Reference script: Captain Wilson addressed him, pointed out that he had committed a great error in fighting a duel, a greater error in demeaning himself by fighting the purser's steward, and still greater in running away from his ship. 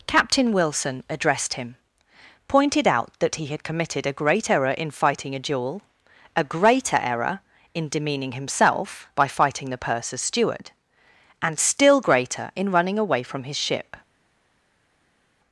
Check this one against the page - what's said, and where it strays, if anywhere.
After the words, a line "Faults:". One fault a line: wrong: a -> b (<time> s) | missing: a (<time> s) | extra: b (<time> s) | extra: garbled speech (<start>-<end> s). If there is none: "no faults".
Captain Wilson addressed him, pointed out that he had committed a great error in fighting a duel, a greater error in demeaning himself by fighting the purser's steward, and still greater in running away from his ship.
Faults:
no faults